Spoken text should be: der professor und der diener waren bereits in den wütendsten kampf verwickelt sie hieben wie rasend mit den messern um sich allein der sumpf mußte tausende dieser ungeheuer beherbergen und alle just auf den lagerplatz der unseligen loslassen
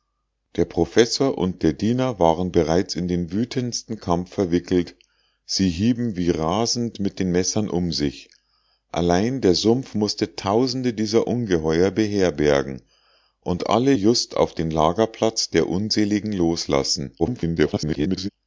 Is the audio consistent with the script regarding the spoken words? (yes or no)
no